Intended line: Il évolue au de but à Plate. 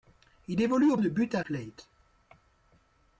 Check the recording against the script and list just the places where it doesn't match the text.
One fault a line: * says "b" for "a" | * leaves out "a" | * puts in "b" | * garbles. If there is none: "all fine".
all fine